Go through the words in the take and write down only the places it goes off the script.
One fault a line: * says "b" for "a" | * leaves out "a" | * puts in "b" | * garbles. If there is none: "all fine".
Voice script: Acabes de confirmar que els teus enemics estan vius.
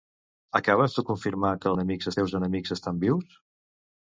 * says "enemics" for "els"